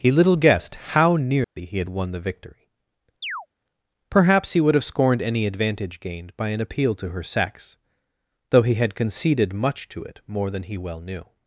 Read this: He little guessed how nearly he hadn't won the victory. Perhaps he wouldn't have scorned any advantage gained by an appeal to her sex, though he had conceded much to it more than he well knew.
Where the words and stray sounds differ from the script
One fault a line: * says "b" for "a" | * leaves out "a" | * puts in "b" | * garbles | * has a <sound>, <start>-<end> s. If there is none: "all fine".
* has a dropout, 1.4-1.6 s
* says "had" for "hadn't"
* has a chirp, 3.2-3.5 s
* says "would" for "wouldn't"